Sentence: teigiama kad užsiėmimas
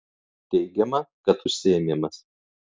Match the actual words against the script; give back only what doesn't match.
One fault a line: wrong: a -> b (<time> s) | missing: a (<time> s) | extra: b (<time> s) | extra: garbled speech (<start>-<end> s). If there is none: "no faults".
no faults